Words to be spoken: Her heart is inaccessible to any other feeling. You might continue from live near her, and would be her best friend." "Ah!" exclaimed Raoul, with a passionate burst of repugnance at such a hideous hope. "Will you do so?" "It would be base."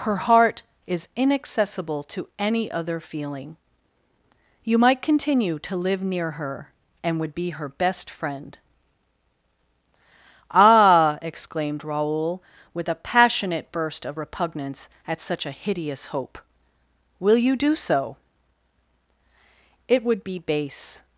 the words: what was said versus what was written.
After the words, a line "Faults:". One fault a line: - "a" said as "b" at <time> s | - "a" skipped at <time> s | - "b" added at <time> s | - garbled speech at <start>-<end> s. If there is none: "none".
Her heart is inaccessible to any other feeling. You might continue to live near her, and would be her best friend." "Ah!" exclaimed Raoul, with a passionate burst of repugnance at such a hideous hope. "Will you do so?" "It would be base."
Faults:
- "from" said as "to" at 5.6 s